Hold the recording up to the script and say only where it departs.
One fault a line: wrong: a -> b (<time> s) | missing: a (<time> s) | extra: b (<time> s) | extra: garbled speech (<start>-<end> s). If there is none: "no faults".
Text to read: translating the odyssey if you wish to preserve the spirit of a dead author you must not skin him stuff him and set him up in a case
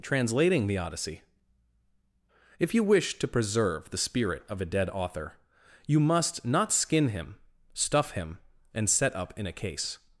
missing: him (9.2 s)